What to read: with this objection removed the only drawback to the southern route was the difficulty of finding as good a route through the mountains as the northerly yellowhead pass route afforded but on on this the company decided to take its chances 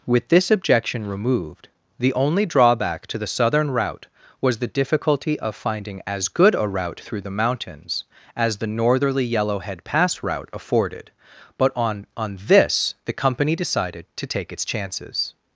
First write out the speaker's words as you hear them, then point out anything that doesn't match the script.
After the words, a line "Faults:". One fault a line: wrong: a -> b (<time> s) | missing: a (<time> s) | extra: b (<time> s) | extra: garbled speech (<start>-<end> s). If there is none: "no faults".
with this objection removed the only drawback to the southern route was the difficulty of finding as good a route through the mountains as the northerly yellowhead pass route afforded but on on this the company decided to take its chances
Faults:
no faults